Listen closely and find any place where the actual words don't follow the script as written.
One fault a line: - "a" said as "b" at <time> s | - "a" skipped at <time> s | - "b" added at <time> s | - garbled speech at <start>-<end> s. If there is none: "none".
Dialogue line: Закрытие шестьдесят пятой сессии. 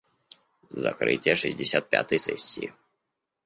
none